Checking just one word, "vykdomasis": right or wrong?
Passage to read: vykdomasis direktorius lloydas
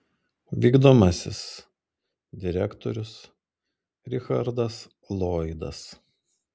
right